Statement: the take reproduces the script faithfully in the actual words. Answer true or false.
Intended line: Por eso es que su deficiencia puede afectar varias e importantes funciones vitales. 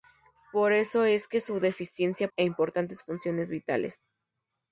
false